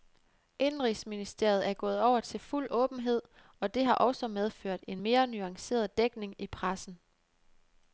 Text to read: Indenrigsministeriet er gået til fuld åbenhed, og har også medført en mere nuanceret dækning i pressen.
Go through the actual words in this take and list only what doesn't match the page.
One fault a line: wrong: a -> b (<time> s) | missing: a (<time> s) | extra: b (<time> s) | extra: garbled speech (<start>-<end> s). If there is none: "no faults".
extra: over (2.0 s)
extra: det (3.7 s)